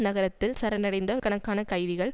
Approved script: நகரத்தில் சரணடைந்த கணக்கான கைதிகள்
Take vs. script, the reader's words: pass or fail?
pass